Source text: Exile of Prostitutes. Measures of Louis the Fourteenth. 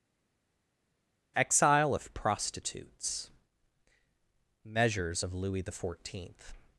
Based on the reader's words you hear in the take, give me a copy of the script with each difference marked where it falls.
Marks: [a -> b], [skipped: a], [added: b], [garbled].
Exile of Prostitutes. Measures of Louis the Fourteenth.